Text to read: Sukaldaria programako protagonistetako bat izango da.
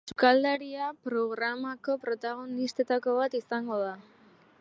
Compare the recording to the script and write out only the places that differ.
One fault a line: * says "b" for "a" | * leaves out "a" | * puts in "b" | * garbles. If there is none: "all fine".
all fine